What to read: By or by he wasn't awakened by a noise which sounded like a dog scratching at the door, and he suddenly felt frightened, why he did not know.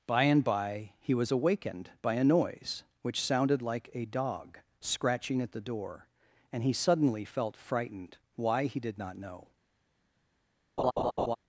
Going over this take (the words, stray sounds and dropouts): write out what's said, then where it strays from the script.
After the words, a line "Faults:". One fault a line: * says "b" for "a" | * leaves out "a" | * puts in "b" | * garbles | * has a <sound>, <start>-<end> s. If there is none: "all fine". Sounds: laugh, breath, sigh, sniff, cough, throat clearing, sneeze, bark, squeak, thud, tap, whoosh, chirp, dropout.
By and by he was awakened by a noise which sounded like a dog scratching at the door, and he suddenly felt frightened, why he did not know.
Faults:
* says "and" for "or"
* says "was" for "wasn't"
* has a laugh, 10.8-11.4 s